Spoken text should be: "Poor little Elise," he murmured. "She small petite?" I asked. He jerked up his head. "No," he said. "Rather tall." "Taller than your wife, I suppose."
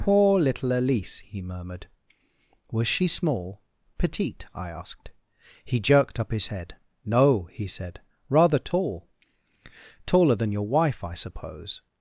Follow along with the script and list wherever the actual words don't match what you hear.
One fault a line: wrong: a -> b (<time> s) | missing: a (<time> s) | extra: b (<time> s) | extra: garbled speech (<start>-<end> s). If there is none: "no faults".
extra: Was (2.7 s)